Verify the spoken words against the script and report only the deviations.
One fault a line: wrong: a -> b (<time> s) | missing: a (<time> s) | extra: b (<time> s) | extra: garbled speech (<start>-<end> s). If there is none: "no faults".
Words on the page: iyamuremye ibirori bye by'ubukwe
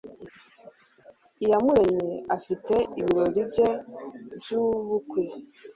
extra: afite (2.4 s)